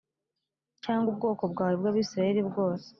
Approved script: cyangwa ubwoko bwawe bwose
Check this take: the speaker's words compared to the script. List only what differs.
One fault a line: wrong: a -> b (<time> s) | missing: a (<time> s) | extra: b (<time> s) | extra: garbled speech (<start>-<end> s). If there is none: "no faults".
extra: bw'abisirayeli (1.8 s)